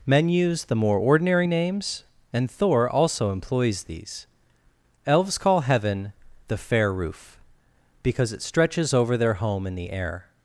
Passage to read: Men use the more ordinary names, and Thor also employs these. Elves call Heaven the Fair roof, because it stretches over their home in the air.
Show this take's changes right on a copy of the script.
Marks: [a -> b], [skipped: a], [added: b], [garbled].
Men use the more ordinary names, and Thor also employs these. Elves call Heaven the Fair roof, because it stretches over their home in the air.